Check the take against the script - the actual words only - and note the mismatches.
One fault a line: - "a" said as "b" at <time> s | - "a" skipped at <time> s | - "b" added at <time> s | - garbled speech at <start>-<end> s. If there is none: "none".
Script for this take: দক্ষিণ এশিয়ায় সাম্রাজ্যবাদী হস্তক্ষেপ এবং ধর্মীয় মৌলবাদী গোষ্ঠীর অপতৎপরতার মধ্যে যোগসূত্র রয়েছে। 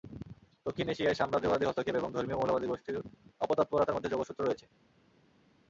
none